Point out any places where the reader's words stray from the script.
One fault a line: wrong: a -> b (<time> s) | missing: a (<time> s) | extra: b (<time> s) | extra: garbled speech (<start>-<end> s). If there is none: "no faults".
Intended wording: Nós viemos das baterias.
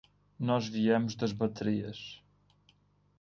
no faults